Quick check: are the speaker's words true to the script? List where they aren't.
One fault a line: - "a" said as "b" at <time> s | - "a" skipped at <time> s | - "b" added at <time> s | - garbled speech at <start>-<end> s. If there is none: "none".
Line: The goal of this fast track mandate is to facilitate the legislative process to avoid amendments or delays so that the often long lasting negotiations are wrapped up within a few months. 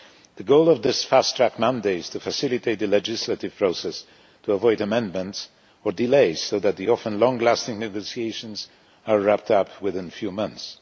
none